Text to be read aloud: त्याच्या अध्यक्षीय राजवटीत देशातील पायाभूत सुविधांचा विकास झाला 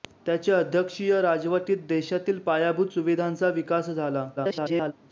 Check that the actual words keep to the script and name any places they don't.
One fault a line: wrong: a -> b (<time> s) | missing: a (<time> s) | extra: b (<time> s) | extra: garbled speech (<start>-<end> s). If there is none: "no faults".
extra: garbled speech (4.4-4.9 s)